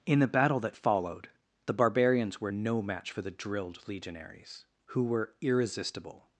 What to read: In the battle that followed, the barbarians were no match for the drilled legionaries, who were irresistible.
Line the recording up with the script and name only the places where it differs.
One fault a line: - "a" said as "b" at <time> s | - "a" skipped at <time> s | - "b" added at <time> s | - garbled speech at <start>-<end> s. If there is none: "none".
none